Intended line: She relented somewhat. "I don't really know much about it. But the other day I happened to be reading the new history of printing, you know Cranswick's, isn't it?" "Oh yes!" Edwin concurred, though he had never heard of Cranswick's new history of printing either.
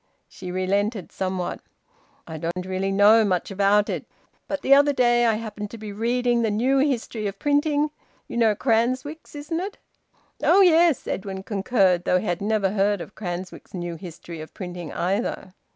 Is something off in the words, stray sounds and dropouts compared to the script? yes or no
yes